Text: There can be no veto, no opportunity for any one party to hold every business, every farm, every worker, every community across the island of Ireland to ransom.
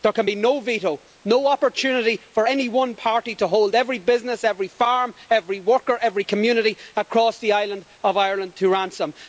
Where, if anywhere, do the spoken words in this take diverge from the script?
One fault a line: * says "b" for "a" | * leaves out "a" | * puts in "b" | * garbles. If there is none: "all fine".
all fine